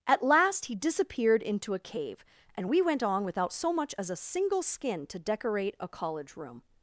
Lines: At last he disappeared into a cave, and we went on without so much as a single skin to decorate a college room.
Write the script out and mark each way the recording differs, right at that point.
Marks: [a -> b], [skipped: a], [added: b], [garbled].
At last he disappeared into a cave, and we went on without so much as a single skin to decorate a college room.